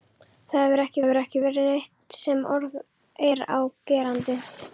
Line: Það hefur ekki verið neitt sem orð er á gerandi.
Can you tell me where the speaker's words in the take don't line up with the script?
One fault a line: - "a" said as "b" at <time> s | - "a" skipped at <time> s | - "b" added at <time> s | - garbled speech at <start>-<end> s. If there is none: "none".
- "hefur ekki" added at 1.0 s